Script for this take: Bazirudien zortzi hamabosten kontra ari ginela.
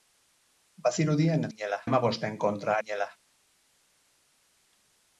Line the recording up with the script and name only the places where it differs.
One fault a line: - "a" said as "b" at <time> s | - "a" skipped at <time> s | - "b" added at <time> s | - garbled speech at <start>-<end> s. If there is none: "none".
- "zortzi" said as "ginela" at 1.5 s
- "ari" skipped at 2.8 s